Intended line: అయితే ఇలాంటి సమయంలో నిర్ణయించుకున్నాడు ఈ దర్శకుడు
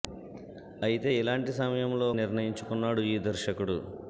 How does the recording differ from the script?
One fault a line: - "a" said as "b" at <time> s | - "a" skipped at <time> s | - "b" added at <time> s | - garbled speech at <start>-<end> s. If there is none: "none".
none